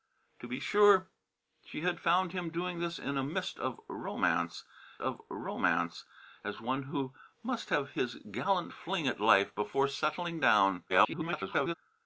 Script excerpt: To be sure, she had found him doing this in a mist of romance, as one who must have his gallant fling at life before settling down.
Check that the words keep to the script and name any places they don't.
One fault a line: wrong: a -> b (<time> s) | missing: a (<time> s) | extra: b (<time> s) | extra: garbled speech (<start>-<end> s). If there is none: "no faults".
extra: of romance (5.0 s)
extra: garbled speech (10.9-11.7 s)